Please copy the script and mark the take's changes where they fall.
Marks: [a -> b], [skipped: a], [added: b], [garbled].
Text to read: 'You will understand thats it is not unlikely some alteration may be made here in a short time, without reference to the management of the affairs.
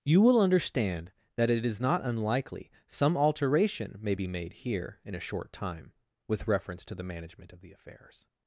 'You will understand [thats -> that] it is not unlikely some alteration may be made here in a short time, [without -> with] reference to the management of the affairs.